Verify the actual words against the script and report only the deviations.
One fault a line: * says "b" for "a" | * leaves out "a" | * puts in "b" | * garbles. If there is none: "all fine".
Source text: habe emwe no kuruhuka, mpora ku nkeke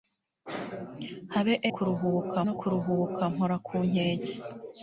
* says "kuruhuka" for "emwe"